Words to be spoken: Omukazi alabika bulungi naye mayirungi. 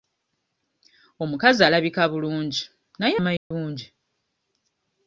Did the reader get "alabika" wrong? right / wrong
right